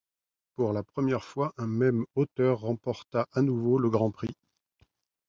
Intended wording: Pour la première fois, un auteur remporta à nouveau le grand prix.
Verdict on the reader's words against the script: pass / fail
fail